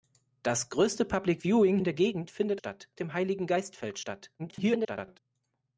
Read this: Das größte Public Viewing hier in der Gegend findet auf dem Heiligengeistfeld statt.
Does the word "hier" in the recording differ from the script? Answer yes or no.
yes